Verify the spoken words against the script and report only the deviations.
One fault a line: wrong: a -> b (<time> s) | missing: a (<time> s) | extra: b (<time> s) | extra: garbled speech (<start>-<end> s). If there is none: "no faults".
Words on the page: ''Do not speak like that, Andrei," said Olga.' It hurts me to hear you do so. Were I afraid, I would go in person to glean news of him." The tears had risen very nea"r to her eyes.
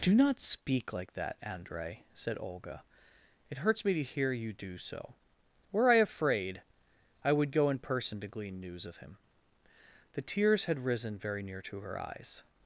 no faults